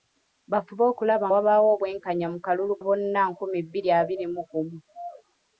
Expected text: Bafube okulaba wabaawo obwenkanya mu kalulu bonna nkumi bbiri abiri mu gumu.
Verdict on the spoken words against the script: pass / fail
pass